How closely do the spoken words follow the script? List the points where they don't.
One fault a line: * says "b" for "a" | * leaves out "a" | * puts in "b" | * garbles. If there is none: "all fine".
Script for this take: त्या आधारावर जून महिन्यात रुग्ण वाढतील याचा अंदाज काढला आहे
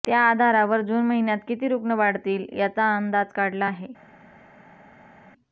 * puts in "किती"